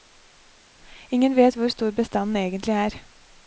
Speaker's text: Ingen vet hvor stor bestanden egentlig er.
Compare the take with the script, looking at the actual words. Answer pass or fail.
pass